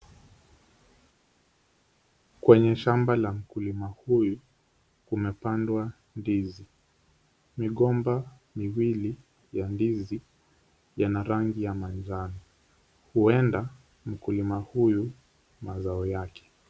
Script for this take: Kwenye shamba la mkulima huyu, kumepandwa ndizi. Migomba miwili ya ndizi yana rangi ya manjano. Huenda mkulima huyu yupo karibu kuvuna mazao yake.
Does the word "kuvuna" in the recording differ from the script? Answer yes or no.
yes